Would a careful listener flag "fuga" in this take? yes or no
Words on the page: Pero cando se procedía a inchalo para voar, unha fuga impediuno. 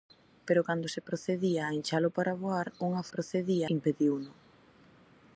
yes